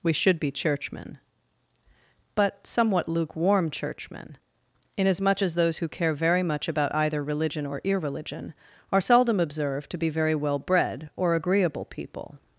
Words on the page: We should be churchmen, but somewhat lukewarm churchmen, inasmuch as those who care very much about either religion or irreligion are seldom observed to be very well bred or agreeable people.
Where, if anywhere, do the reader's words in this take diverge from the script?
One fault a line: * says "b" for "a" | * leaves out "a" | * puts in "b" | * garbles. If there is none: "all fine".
all fine